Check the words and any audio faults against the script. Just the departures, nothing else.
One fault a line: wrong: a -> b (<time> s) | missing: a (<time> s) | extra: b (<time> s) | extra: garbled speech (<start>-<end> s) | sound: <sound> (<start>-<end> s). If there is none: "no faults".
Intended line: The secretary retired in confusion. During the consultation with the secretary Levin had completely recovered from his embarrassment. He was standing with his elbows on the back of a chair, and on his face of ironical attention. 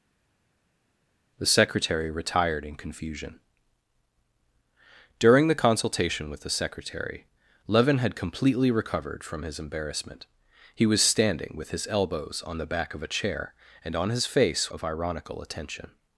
no faults